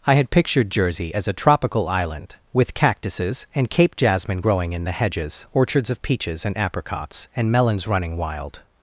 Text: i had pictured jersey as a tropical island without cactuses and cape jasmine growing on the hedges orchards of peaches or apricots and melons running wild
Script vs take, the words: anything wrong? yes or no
yes